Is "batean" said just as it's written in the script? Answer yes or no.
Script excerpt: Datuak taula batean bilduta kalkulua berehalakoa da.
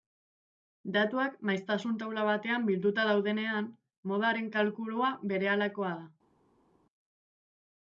yes